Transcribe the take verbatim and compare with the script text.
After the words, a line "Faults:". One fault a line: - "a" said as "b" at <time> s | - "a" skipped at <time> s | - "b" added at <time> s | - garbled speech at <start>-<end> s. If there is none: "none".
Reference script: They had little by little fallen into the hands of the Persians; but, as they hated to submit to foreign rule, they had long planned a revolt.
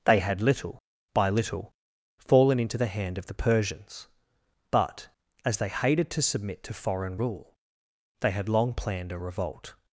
They had little by little fallen into the hand of the Persians; but, as they hated to submit to foreign rule, they had long planned a revolt.
Faults:
- "hands" said as "hand" at 2.9 s